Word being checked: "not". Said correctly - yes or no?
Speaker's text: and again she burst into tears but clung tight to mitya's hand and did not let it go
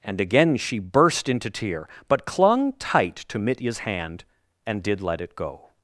no